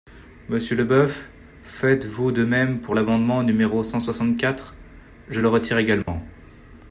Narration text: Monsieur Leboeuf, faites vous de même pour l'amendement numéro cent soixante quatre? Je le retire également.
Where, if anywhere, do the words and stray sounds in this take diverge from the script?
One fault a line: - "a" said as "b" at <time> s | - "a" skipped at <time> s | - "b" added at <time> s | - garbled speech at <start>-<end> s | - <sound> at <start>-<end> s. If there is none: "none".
- dropout at 6.0-6.1 s